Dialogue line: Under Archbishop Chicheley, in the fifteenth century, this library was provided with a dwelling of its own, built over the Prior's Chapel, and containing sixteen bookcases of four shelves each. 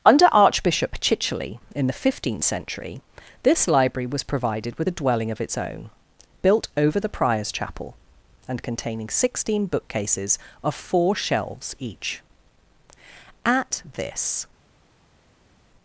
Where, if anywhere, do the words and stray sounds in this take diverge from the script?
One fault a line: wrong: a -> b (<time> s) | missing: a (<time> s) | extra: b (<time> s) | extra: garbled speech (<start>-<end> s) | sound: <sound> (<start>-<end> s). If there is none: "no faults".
extra: At this (13.4 s)